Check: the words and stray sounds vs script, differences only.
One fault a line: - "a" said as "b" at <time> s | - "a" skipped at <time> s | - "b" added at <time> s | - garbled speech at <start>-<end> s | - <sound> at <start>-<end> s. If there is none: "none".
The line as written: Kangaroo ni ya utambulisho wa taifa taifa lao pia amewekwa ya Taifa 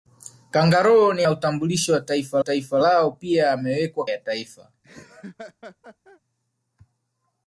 - laugh at 4.8-6.2 s